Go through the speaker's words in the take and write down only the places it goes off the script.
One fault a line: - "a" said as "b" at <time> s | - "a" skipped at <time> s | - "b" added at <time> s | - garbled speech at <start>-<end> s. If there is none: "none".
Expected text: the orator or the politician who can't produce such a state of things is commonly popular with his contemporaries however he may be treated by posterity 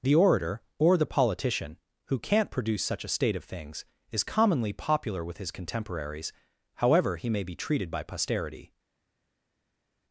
none